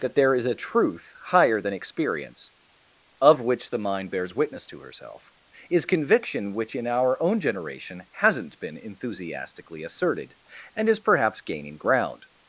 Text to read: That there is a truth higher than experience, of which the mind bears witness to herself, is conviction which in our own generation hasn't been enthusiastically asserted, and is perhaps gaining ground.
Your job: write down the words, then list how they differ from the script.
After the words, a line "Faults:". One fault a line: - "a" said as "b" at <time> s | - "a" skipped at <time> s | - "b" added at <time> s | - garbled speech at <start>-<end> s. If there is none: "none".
That there is a truth higher than experience, of which the mind bears witness to herself, is conviction which in our own generation hasn't been enthusiastically asserted, and is perhaps gaining ground.
Faults:
none